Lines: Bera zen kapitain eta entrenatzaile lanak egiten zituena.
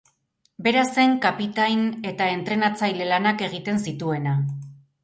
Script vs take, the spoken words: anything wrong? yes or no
no